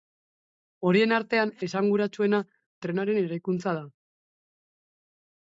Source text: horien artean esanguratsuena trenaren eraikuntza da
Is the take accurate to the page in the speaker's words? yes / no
yes